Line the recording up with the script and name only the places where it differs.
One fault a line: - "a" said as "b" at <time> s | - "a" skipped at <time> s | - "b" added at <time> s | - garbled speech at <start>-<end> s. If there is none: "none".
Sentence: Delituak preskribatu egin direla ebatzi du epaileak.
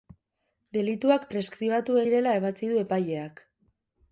- "egin" skipped at 2.0 s